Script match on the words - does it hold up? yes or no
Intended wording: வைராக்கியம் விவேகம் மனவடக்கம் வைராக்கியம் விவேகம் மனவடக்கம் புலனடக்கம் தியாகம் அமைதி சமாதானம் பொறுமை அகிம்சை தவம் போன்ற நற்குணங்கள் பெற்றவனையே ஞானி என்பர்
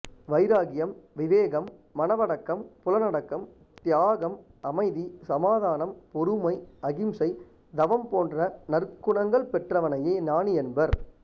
no